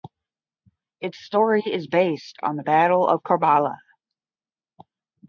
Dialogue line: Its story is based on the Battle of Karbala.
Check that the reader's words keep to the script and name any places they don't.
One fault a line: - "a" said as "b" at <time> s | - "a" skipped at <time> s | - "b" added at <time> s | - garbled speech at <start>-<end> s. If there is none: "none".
none